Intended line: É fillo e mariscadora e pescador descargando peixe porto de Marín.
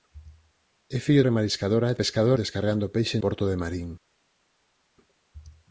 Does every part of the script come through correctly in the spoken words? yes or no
yes